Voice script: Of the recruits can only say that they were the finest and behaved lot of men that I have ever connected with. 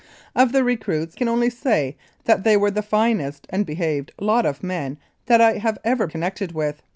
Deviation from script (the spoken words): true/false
false